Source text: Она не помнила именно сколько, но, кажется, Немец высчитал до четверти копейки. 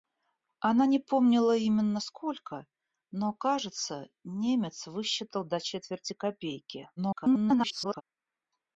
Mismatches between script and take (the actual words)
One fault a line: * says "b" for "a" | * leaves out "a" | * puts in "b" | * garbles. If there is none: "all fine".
* garbles